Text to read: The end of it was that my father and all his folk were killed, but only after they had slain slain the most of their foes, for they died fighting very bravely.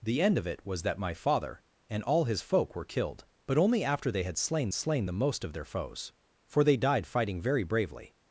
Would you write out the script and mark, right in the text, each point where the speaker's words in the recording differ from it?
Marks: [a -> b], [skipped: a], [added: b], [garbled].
The end of it was that my father and all his folk were killed, but only after they had slain slain the most of their foes, for they died fighting very bravely.